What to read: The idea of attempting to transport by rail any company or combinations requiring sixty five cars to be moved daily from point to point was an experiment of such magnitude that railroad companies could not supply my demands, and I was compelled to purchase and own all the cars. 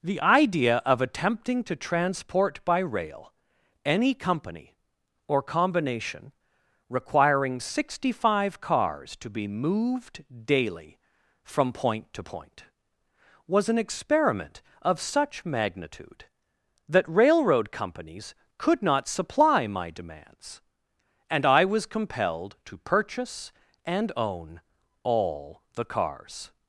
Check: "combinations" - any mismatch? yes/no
yes